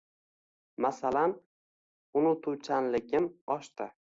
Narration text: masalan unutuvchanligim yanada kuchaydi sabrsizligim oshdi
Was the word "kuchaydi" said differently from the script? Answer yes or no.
yes